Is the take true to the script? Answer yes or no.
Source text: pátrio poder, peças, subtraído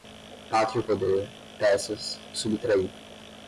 yes